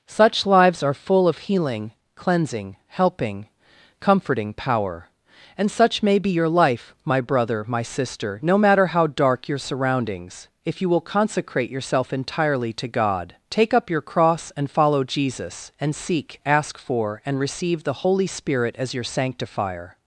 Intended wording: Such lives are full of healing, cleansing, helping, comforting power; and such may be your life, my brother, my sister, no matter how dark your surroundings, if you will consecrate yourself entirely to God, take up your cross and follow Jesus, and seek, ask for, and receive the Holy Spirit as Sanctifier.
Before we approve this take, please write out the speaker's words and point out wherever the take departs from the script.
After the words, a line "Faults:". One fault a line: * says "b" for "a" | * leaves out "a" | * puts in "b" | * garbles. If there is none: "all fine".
Such lives are full of healing, cleansing, helping, comforting power; and such may be your life, my brother, my sister, no matter how dark your surroundings, if you will consecrate yourself entirely to God, take up your cross and follow Jesus, and seek, ask for, and receive the Holy Spirit as your Sanctifier.
Faults:
* puts in "your"